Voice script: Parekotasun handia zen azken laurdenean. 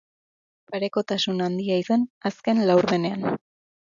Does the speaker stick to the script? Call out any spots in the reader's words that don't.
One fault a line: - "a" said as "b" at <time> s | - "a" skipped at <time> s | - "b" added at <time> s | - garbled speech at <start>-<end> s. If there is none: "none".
none